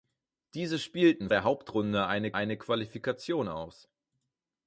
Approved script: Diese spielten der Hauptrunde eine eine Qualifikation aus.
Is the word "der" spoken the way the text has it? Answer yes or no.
yes